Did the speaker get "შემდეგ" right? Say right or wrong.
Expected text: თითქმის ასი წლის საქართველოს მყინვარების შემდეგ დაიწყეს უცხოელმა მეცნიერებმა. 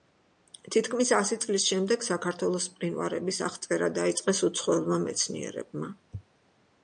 wrong